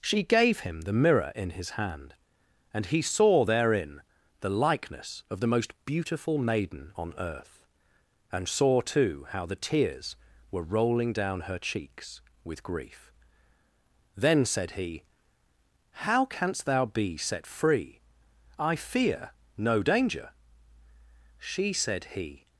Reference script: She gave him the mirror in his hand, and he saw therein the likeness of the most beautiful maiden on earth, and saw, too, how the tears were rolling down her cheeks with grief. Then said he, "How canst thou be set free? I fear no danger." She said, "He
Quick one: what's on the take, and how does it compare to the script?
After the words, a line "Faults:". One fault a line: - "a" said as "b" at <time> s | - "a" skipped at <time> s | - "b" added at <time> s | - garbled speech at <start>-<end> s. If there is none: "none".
She gave him the mirror in his hand, and he saw therein the likeness of the most beautiful maiden on earth, and saw, too, how the tears were rolling down her cheeks with grief. Then said he, "How canst thou be set free? I fear no danger." She said, "He
Faults:
none